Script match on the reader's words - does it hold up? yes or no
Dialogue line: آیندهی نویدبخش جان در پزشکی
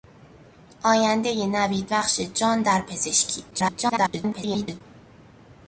no